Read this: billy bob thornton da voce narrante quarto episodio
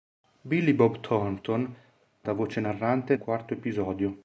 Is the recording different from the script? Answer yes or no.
no